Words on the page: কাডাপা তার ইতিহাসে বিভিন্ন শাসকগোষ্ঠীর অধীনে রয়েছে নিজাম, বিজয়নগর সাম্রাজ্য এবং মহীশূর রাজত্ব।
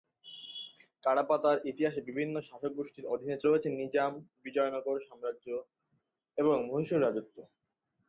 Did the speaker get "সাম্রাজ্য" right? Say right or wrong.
right